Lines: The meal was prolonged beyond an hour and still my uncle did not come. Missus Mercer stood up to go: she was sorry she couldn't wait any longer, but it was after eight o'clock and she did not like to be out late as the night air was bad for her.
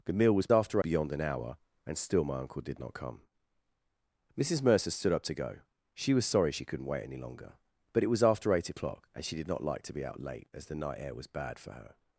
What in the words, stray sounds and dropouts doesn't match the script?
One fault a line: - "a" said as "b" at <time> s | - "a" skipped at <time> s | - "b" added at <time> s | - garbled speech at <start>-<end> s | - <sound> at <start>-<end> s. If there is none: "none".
- "prolonged" said as "after" at 0.5 s